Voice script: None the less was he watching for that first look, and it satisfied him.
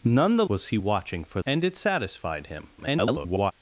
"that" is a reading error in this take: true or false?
true